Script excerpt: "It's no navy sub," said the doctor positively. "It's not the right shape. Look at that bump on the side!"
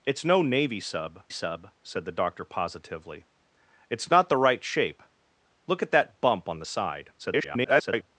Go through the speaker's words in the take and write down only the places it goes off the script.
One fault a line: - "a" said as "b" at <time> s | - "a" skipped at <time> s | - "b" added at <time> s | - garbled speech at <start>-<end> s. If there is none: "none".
- "sub" added at 1.3 s
- garbled speech at 7.2-8.1 s